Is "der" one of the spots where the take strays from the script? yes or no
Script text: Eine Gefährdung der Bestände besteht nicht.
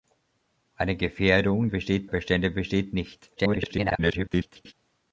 yes